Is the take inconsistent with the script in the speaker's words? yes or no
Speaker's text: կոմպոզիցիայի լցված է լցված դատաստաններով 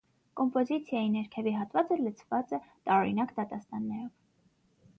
yes